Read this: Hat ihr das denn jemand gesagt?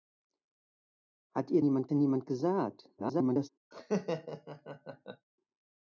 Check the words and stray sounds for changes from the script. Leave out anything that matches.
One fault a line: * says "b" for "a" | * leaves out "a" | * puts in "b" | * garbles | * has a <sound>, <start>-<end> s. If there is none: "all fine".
* says "jemand" for "das"
* garbles
* has a laugh, 3.7-5.3 s